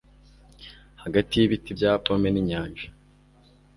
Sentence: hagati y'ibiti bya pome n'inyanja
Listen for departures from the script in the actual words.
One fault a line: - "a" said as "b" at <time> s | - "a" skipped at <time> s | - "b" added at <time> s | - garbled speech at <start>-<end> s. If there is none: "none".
none